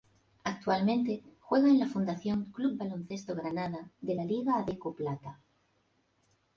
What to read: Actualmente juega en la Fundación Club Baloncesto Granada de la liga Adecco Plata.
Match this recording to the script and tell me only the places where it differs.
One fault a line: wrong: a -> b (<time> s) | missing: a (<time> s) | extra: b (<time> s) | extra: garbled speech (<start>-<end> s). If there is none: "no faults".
no faults